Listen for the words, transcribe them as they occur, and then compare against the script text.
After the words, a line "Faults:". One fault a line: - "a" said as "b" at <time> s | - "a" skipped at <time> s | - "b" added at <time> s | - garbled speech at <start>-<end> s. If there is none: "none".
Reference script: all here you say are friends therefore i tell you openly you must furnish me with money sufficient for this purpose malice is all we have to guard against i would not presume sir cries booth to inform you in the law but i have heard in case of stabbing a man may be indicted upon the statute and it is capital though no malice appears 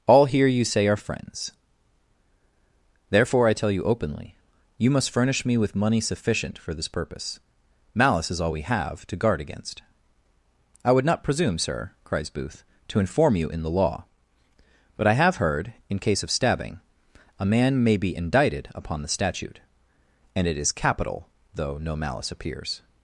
all here you say are friends therefore i tell you openly you must furnish me with money sufficient for this purpose malice is all we have to guard against i would not presume sir cries booth to inform you in the law but i have heard in case of stabbing a man may be indicted upon the statute and it is capital though no malice appears
Faults:
none